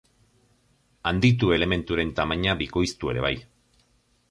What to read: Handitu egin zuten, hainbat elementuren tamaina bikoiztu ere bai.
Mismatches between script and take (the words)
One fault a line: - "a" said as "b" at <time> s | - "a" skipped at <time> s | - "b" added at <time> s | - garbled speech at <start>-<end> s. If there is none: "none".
- "egin zuten hainbat" skipped at 1.5 s